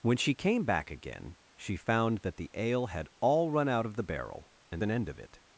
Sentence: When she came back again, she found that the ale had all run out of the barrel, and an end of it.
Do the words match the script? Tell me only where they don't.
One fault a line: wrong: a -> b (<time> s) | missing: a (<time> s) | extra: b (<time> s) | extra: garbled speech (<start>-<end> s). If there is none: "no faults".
no faults